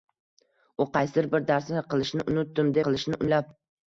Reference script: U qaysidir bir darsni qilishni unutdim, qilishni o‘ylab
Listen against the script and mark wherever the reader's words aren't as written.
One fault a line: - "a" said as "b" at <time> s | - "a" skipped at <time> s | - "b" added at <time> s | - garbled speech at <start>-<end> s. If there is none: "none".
none